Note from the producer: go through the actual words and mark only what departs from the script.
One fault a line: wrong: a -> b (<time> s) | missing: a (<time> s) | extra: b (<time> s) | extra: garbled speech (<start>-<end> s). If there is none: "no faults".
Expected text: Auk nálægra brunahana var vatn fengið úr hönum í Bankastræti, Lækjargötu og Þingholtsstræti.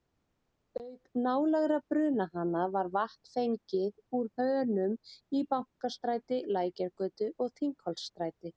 no faults